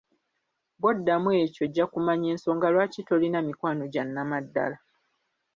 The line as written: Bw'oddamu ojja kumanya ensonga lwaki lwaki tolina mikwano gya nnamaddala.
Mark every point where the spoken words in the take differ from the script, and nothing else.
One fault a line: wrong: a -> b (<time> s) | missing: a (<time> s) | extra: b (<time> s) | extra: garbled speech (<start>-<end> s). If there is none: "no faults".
extra: ekyo (1.4 s)
missing: lwaki (3.0 s)